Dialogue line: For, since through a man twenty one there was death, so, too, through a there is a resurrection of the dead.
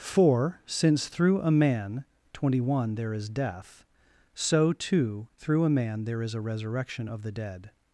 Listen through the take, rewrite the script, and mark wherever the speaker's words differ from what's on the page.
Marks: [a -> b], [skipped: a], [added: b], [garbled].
For, since through a man twenty one there [was -> is] death, so, too, through a [added: man] there is a resurrection of the dead.